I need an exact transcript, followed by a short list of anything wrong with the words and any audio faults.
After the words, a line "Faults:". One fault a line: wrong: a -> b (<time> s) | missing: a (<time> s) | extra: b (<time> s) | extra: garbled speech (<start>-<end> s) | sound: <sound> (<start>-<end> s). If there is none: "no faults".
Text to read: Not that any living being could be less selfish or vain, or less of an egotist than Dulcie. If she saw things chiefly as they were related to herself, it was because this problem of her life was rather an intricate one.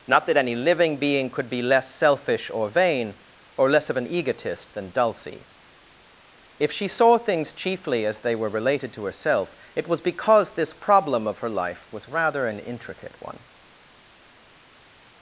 Not that any living being could be less selfish or vain, or less of an egotist than Dulcie. If she saw things chiefly as they were related to herself, it was because this problem of her life was rather an intricate one.
Faults:
no faults